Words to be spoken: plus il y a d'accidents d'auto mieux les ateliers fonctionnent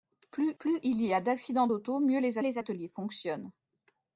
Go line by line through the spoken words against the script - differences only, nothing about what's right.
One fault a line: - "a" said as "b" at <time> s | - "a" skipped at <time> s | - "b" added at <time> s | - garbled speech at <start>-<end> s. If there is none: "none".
- "plus" added at 0.6 s
- "les" added at 2.4 s